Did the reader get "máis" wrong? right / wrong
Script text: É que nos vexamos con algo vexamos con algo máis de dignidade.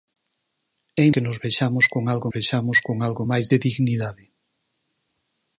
right